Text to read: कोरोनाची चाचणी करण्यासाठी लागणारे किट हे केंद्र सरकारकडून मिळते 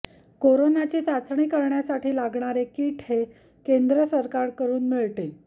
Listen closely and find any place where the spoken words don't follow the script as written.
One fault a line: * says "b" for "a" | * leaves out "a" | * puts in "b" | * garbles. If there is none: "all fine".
all fine